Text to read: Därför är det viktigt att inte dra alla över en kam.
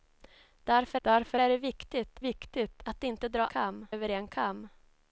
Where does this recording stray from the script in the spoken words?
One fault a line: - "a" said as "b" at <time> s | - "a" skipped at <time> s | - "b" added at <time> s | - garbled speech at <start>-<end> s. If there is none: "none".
- "därför" added at 1.0 s
- "viktigt" added at 2.2 s
- "alla" said as "kam" at 3.5 s